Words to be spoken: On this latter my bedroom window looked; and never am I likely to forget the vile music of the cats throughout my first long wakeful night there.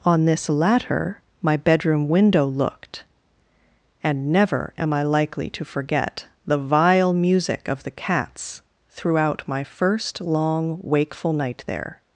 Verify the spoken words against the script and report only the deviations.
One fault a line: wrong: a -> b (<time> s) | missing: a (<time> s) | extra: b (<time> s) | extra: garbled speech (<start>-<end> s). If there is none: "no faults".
no faults